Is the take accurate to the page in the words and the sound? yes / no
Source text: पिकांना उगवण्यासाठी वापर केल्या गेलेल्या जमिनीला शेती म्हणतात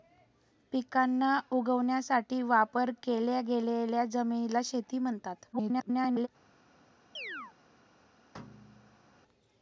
no